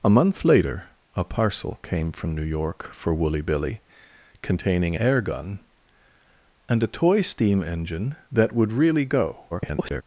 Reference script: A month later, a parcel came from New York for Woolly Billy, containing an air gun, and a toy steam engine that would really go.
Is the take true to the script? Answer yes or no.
no